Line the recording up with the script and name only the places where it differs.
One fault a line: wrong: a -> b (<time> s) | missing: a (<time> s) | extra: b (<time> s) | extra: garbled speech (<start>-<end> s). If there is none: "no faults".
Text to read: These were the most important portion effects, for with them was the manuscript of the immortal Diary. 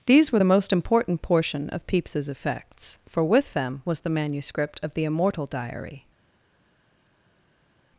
extra: of Pepys's (1.7 s)